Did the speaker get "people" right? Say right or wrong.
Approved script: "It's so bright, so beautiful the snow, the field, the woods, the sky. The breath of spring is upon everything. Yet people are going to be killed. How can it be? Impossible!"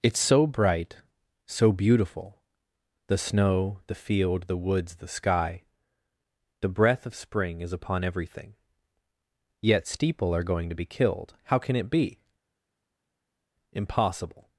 wrong